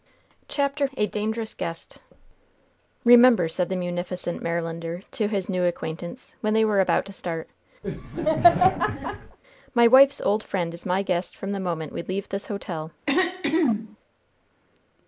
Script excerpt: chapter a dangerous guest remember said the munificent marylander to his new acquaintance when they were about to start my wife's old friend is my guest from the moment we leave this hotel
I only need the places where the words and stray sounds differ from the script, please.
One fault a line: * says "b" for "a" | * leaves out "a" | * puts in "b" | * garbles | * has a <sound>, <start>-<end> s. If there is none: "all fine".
* has a laugh, 7.8-9.4 s
* has a throat clearing, 13.1-14.0 s